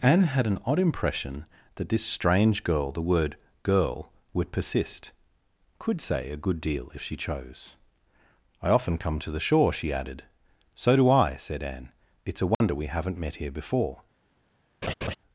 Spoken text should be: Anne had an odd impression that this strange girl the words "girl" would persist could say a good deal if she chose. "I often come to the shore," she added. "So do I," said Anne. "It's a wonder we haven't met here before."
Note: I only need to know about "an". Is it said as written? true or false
true